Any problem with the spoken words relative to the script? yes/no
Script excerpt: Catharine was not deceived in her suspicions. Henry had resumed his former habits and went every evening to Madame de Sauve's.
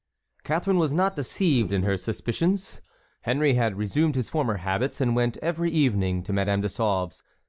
no